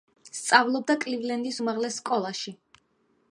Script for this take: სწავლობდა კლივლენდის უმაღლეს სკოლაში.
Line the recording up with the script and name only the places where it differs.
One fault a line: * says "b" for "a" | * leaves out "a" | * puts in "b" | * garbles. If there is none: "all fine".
all fine